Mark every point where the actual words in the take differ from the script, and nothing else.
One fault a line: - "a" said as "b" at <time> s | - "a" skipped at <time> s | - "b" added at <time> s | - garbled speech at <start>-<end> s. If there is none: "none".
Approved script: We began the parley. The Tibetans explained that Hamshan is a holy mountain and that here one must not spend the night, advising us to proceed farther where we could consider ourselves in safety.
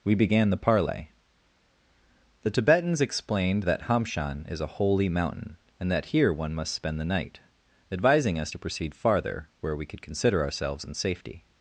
- "not" skipped at 6.7 s